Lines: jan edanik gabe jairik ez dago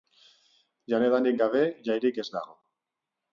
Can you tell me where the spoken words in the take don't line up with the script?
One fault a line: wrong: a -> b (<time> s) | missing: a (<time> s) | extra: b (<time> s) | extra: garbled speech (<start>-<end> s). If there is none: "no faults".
no faults